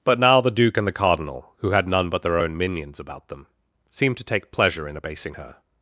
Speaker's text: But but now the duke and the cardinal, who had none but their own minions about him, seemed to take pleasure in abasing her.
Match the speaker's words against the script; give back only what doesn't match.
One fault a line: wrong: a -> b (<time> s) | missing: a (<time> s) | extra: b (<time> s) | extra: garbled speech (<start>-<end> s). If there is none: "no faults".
missing: but (0.2 s)
wrong: him -> them (3.3 s)